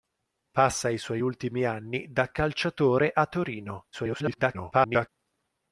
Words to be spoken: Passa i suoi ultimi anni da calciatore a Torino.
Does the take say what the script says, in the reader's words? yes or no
no